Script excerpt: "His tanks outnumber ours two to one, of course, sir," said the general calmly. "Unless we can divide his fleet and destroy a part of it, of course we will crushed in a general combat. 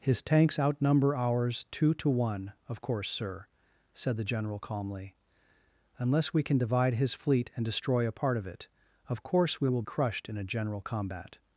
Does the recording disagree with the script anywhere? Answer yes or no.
no